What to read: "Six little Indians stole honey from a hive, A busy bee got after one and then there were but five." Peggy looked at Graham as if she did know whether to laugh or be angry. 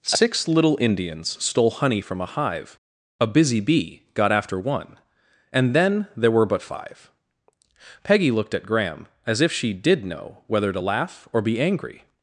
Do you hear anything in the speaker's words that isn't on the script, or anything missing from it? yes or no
no